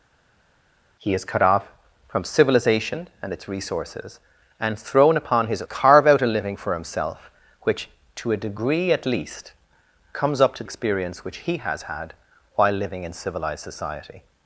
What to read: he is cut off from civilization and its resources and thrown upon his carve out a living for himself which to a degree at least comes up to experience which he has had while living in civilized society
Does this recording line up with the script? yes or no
yes